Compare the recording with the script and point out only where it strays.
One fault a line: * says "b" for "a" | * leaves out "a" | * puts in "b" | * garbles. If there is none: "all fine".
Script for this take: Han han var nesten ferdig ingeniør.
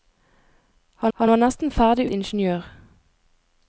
all fine